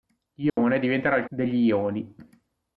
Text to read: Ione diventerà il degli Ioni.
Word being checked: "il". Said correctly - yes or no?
yes